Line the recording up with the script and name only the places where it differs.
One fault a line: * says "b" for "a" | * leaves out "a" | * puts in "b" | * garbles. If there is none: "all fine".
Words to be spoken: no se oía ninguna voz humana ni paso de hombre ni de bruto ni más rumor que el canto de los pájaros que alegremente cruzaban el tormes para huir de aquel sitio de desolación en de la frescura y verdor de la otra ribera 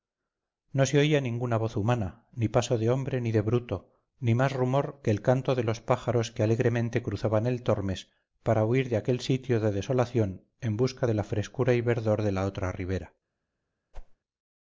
* puts in "busca"